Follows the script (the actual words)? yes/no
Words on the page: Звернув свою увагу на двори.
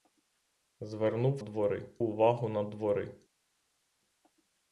no